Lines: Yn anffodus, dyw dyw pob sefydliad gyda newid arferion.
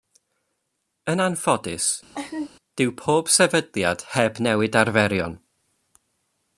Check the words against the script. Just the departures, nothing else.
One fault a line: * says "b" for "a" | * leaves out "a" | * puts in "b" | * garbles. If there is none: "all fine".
* leaves out "dyw"
* says "heb" for "gyda"